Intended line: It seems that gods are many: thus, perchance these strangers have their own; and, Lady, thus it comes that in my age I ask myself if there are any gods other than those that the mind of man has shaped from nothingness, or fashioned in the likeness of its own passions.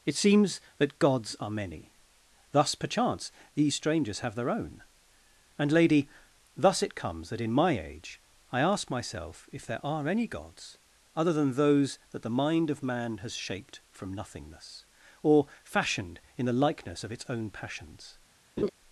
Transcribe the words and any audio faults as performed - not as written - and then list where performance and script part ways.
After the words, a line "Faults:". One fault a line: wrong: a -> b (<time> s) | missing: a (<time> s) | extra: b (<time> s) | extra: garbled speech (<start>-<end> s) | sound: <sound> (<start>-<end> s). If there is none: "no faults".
It seems that gods are many: thus, perchance these strangers have their own; and, Lady, thus it comes that in my age I ask myself if there are any gods other than those that the mind of man has shaped from nothingness, or fashioned in the likeness of its own passions.
Faults:
sound: laugh (18.6-18.7 s)